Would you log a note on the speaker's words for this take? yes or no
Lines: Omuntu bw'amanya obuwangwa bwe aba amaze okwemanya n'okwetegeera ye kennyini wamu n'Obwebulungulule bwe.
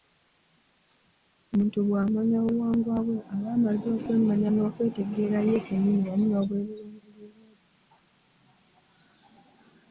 no